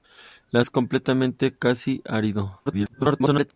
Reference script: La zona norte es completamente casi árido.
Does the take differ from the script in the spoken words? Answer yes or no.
yes